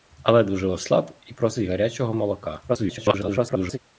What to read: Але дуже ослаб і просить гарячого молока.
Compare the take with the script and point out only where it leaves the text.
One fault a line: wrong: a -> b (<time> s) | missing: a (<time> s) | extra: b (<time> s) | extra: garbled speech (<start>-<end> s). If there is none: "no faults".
extra: garbled speech (2.7-3.8 s)